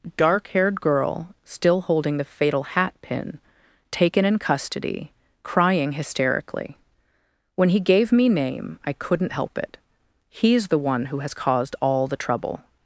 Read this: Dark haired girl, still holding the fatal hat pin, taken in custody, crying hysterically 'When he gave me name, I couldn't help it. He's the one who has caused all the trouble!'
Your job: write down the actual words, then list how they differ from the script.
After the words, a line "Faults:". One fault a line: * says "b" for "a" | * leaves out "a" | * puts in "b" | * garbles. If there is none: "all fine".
Dark haired girl, still holding the fatal hat pin, taken in custody, crying hysterically 'When he gave me name, I couldn't help it. He's the one who has caused all the trouble!'
Faults:
all fine